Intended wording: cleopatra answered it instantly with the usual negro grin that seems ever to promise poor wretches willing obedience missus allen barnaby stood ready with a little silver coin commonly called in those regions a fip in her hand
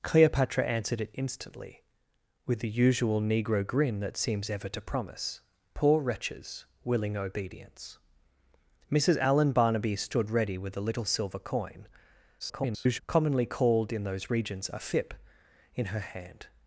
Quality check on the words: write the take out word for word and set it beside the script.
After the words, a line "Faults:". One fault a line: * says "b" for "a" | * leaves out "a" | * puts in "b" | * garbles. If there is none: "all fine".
cleopatra answered it instantly with the usual negro grin that seems ever to promise poor wretches willing obedience missus allen barnaby stood ready with a little silver coin [garbled] commonly called in those regions a fip in her hand
Faults:
* garbles